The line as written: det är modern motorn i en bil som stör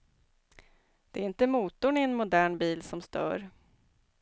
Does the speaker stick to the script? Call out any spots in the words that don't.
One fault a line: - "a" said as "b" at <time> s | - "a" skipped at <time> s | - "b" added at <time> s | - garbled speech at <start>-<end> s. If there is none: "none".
- "modern" said as "inte" at 1.2 s
- "modern" added at 2.1 s